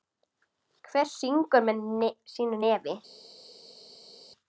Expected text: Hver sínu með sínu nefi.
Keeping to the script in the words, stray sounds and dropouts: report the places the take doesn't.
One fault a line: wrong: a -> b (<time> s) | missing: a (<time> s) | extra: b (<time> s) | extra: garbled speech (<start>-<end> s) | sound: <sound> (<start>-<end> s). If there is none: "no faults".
wrong: sínu -> syngur (1.1 s)